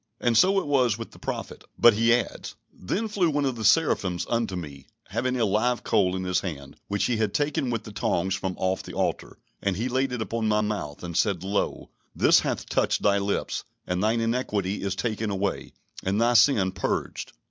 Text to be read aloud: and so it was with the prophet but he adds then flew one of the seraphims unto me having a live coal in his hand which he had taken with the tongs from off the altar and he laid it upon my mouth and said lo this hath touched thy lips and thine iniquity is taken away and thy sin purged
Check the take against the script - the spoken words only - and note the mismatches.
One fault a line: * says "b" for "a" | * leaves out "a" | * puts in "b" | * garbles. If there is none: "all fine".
all fine